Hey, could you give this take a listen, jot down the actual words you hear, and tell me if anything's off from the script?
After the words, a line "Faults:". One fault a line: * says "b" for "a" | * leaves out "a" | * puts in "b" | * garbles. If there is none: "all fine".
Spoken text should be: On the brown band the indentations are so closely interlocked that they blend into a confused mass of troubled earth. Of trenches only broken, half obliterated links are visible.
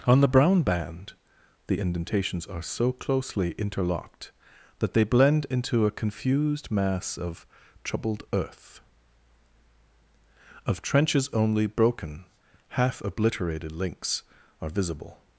On the brown band the indentations are so closely interlocked that they blend into a confused mass of troubled earth. Of trenches only broken, half obliterated links are visible.
Faults:
all fine